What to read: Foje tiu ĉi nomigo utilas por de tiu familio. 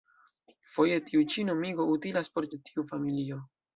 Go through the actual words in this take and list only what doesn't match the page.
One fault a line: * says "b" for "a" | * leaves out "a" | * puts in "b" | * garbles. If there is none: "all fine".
all fine